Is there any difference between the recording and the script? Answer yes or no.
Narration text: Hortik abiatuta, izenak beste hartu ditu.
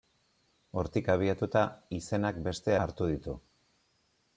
no